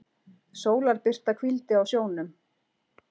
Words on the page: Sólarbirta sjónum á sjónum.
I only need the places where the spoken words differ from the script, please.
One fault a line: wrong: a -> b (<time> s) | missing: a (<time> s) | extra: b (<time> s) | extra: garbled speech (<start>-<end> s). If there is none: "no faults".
wrong: sjónum -> hvíldi (1.4 s)